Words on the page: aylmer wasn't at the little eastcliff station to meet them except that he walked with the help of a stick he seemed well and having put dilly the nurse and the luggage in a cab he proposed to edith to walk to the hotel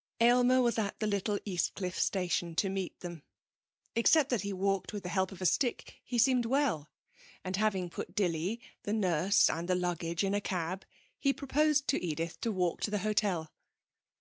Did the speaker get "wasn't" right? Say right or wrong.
wrong